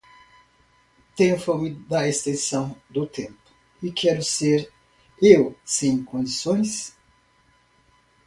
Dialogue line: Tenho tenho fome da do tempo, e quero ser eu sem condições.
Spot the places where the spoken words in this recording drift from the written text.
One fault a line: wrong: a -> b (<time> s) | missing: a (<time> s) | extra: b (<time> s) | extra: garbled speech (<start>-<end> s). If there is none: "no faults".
missing: tenho (1.4 s)
extra: extensão (2.1 s)